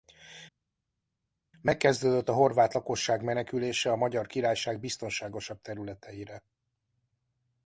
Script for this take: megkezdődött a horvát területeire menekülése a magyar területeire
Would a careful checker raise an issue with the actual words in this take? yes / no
yes